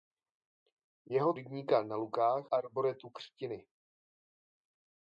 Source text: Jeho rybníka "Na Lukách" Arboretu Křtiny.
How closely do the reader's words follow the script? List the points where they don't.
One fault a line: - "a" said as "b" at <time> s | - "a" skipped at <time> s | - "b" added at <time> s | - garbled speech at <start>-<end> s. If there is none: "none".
none